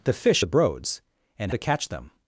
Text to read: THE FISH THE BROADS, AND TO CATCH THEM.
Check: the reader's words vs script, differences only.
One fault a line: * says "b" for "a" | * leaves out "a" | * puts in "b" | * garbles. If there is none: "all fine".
all fine